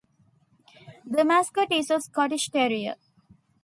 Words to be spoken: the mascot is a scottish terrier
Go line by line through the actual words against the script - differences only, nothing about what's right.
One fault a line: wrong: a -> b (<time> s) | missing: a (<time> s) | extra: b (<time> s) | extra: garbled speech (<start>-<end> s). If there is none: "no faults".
no faults